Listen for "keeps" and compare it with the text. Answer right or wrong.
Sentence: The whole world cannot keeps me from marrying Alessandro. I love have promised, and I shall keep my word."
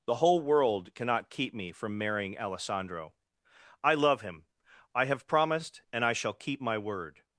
wrong